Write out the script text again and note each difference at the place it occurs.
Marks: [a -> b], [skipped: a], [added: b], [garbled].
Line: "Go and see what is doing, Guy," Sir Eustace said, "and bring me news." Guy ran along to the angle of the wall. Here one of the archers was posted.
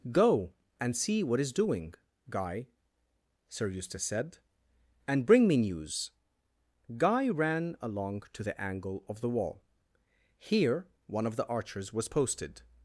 "Go and see what is doing, Guy," Sir Eustace said, "and bring me news." Guy ran along to the angle of the wall. Here one of the archers was posted.